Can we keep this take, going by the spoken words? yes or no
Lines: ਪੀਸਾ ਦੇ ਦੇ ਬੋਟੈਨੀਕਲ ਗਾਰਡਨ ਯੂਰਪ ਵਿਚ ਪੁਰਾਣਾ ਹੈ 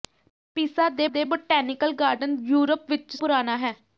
yes